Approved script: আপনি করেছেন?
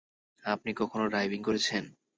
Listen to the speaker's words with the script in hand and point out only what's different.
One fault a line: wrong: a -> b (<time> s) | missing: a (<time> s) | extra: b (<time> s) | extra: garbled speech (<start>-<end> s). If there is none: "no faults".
extra: কখনো ডাইভিং (0.7 s)